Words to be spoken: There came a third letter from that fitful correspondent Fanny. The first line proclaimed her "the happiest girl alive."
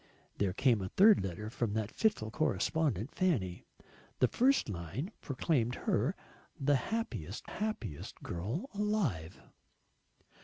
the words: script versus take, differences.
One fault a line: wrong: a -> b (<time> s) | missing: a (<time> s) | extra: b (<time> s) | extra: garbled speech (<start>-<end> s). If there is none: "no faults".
extra: happiest (7.4 s)